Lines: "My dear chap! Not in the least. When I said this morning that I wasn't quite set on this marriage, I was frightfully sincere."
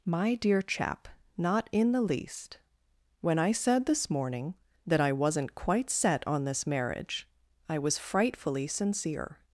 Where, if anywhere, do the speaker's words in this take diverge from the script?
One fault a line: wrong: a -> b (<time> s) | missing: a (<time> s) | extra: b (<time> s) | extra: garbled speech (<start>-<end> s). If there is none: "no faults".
no faults